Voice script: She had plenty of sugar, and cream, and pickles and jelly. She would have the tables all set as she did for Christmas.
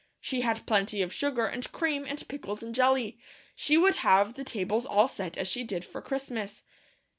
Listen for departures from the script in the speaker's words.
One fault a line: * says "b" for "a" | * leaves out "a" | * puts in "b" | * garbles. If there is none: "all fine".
all fine